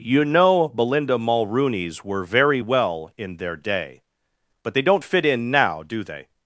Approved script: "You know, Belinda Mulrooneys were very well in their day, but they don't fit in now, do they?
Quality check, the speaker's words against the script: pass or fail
pass